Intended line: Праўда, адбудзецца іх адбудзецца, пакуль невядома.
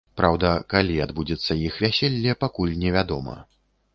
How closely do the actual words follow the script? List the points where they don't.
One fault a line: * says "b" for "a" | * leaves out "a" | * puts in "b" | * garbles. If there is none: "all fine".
* puts in "калі"
* says "вяселле" for "адбудзецца"